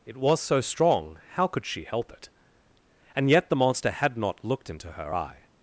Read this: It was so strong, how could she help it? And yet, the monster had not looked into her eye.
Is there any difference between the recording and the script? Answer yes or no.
no